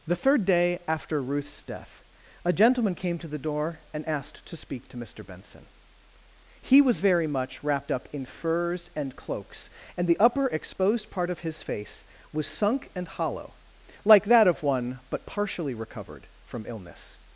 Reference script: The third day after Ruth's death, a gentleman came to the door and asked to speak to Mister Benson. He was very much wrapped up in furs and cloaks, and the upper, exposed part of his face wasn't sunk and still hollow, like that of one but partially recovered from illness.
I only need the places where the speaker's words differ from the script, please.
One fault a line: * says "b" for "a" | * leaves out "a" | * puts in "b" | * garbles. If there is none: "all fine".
* says "was" for "wasn't"
* leaves out "still"